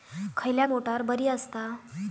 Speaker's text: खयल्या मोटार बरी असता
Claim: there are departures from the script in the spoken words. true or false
false